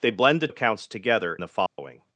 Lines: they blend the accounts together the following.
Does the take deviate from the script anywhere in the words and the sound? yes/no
yes